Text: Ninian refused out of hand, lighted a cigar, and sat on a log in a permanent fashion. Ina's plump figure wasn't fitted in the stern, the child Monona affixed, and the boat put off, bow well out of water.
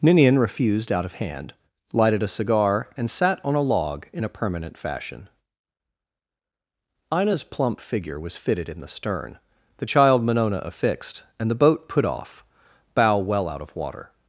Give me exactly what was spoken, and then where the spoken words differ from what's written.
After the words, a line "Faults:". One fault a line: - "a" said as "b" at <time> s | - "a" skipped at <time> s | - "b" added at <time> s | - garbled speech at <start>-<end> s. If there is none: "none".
Ninian refused out of hand, lighted a cigar, and sat on a log in a permanent fashion. Ina's plump figure was fitted in the stern, the child Monona affixed, and the boat put off, bow well out of water.
Faults:
- "wasn't" said as "was" at 8.2 s